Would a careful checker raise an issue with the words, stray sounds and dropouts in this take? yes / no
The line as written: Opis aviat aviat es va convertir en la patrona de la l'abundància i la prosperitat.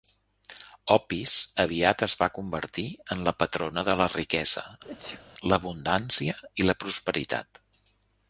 yes